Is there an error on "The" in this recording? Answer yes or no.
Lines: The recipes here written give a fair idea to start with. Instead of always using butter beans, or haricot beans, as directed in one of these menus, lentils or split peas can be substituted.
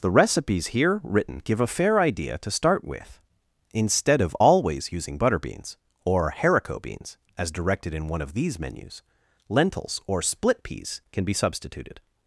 no